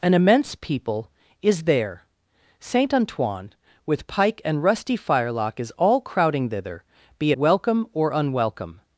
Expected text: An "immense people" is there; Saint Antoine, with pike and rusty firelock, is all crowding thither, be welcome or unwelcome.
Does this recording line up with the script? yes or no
yes